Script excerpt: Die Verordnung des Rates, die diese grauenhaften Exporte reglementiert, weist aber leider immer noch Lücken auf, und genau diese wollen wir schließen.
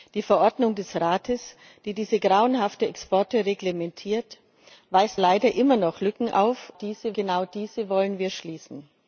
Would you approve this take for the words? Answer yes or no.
no